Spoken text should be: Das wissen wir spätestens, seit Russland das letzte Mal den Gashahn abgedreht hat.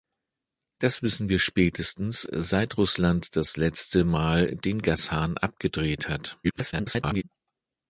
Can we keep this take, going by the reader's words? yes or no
no